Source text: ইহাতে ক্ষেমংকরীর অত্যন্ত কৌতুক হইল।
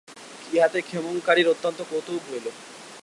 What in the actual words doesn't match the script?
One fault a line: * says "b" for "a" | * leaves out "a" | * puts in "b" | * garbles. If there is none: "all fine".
all fine